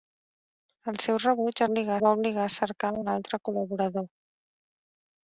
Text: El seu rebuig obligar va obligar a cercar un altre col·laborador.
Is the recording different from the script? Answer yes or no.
no